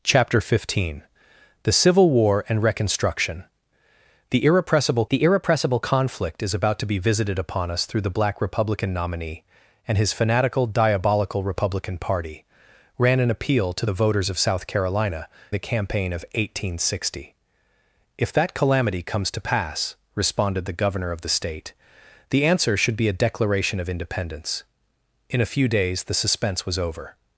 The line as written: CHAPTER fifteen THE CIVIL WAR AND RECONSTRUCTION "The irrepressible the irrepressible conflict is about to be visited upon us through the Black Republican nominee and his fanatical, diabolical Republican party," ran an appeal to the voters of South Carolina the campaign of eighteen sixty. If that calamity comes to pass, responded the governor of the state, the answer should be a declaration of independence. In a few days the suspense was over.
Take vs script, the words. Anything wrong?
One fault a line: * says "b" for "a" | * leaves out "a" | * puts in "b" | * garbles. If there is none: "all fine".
all fine